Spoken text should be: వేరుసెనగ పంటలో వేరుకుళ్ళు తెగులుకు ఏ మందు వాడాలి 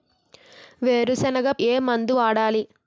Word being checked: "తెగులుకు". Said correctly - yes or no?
no